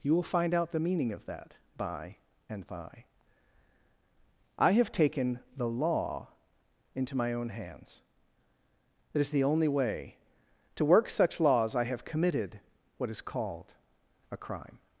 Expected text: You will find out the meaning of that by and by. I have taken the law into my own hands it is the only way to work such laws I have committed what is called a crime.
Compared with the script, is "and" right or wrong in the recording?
right